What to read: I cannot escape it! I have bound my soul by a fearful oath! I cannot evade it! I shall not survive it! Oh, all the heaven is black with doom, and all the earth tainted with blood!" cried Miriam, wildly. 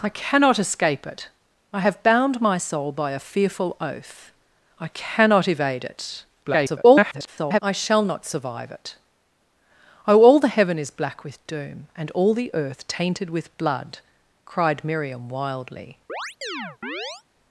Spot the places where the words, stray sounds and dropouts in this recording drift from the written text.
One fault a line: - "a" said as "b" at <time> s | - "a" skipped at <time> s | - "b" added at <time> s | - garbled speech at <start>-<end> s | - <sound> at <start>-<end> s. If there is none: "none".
- garbled speech at 6.4-7.6 s
- chirp at 16.1-17.2 s